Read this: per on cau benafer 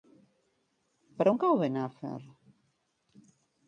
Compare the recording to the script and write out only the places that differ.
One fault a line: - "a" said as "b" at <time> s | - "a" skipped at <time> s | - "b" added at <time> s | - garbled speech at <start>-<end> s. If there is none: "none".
none